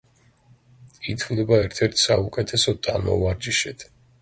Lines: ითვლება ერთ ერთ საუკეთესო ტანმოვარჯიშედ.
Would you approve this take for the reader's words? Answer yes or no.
yes